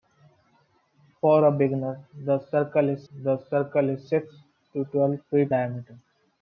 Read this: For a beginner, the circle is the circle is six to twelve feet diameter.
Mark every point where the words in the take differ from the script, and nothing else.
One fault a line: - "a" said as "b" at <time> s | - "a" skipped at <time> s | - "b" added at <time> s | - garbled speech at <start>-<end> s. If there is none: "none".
none